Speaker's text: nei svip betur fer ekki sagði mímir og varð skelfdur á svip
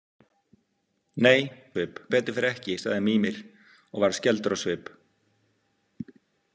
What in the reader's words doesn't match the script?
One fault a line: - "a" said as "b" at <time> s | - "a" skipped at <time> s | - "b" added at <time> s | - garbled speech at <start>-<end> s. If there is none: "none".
none